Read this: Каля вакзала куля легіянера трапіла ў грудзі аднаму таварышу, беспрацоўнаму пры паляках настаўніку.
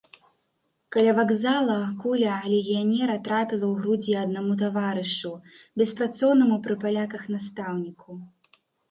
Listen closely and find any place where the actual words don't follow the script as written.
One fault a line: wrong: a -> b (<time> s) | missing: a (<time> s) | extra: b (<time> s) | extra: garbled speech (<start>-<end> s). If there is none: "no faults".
no faults